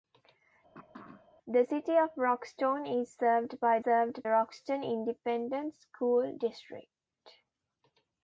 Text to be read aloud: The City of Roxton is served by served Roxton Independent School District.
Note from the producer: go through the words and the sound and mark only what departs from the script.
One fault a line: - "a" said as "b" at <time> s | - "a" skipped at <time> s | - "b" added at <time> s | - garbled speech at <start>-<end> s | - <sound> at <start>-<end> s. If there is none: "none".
- throat clearing at 0.7-1.3 s